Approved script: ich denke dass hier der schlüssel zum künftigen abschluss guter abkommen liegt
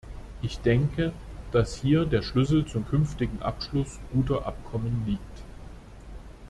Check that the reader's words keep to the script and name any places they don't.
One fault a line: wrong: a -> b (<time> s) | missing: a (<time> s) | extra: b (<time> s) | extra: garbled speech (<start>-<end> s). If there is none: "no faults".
no faults